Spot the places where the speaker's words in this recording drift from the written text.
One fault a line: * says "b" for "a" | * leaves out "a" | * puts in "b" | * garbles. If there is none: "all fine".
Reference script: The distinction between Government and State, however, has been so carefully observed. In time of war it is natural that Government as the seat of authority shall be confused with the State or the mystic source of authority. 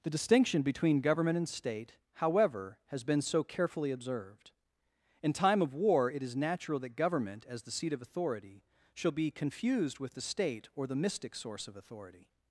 all fine